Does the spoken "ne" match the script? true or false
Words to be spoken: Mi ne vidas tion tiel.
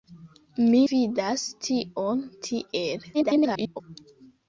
false